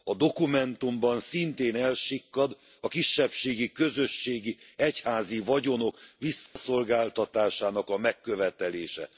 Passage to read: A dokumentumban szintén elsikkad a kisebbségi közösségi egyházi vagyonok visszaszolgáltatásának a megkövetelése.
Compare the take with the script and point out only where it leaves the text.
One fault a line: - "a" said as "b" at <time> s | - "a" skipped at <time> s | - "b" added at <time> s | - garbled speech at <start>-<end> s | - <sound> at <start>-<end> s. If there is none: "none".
- dropout at 6.5-6.6 s